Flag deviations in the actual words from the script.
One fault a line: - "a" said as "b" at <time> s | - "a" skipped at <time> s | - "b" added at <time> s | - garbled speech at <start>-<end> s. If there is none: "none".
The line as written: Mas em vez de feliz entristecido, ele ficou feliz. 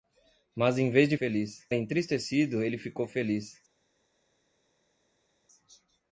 none